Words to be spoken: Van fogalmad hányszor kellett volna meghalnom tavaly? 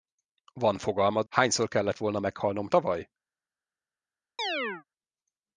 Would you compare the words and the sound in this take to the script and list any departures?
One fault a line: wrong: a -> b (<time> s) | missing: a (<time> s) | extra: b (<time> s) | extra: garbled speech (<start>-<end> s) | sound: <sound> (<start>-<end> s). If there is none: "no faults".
sound: chirp (4.4-4.8 s)